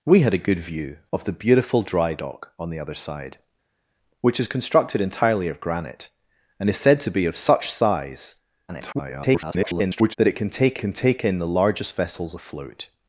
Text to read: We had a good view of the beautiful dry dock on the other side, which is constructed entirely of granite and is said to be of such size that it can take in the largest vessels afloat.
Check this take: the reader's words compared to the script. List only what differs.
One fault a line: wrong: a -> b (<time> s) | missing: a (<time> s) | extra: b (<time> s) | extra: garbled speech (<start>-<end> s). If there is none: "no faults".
extra: garbled speech (8.7-10.2 s)
extra: can take (10.8 s)